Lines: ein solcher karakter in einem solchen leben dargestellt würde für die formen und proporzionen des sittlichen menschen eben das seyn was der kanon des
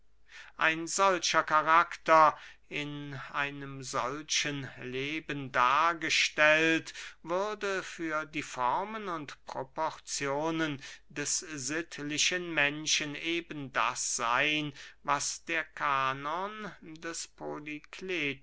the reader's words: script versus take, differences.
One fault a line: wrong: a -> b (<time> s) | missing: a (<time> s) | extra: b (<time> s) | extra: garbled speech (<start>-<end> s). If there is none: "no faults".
no faults